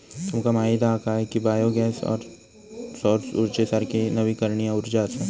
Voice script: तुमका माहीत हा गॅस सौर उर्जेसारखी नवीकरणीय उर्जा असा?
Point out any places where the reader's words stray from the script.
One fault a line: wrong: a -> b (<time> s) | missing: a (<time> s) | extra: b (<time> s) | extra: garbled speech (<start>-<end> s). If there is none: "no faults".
extra: काय की बायो (1.0 s)